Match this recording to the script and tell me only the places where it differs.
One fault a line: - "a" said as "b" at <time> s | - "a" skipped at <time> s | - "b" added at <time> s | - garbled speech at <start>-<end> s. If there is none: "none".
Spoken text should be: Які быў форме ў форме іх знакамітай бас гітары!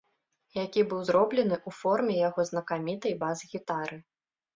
- "форме" said as "зроблены" at 1.1 s
- "іх" said as "яго" at 2.3 s